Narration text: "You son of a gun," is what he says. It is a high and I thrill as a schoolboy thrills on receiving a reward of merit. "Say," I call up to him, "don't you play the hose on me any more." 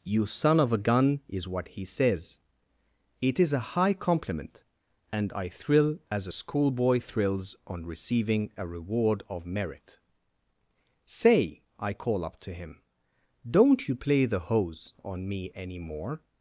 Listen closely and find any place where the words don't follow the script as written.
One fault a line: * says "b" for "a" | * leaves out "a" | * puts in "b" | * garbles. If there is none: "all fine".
* puts in "compliment"